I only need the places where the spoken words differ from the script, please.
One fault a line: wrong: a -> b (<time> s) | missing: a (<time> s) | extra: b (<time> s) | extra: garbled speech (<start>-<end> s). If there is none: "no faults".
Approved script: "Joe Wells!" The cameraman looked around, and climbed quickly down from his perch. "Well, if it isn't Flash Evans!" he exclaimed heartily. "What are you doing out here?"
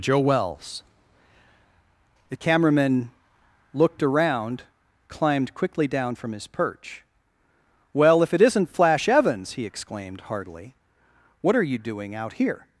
missing: and (4.6 s)